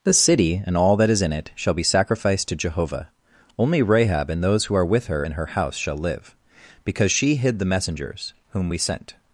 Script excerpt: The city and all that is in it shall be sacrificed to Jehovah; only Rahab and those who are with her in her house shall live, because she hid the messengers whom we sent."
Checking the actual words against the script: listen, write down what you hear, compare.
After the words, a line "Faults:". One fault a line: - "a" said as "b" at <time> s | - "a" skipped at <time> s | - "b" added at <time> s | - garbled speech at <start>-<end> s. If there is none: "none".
The city and all that is in it shall be sacrificed to Jehovah; only Rahab and those who are with her in her house shall live, because she hid the messengers whom we sent."
Faults:
none